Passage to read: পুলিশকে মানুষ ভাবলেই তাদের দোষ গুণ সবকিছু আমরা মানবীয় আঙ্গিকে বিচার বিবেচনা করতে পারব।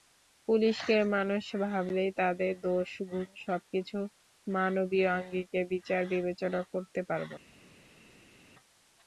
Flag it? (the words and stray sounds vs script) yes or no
yes